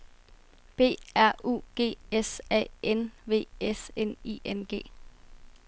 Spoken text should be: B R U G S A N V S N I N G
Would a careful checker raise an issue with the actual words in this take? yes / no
no